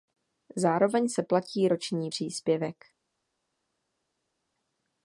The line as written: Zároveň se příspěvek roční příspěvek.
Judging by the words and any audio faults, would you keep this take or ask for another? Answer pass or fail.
fail